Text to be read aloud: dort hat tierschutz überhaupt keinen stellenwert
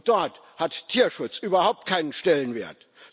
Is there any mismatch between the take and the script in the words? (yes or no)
no